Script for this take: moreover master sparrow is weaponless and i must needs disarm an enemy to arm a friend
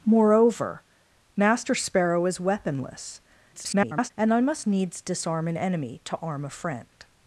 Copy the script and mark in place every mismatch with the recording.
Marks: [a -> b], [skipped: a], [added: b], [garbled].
moreover master sparrow is weaponless [garbled] and i must needs disarm an enemy to arm a friend